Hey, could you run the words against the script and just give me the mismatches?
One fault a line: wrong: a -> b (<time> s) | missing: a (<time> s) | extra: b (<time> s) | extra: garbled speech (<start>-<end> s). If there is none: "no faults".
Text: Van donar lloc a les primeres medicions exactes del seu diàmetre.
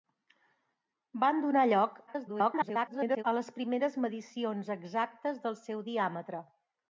extra: garbled speech (2.1-3.2 s)